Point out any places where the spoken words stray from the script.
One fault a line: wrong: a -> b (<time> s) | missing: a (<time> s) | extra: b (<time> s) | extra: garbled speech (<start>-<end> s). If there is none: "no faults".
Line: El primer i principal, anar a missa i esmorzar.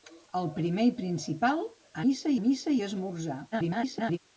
wrong: anar -> missa (2.0 s)
extra: garbled speech (3.5-4.2 s)